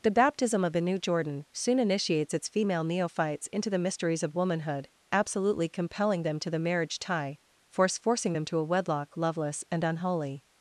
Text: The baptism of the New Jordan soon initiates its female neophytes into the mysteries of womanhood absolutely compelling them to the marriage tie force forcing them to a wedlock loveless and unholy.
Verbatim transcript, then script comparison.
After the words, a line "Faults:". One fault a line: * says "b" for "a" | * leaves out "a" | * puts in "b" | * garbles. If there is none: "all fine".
The baptism of the New Jordan soon initiates its female neophytes into the mysteries of womanhood absolutely compelling them to the marriage tie force forcing them to a wedlock loveless and unholy.
Faults:
all fine